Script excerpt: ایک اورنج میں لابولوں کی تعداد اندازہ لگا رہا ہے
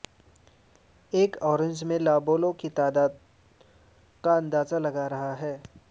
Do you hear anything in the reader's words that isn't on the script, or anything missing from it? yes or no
yes